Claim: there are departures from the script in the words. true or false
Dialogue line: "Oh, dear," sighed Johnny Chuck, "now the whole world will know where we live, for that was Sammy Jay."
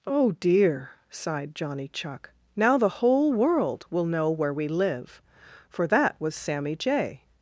false